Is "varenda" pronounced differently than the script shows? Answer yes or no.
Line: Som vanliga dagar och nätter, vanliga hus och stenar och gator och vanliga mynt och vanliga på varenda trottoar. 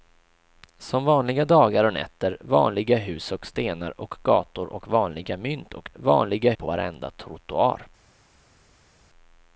no